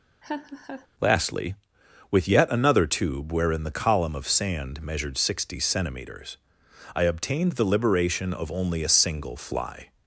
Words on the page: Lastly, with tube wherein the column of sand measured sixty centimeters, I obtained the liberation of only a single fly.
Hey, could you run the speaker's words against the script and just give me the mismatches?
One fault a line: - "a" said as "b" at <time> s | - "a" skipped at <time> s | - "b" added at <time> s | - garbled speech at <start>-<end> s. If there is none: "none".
- "yet another" added at 2.3 s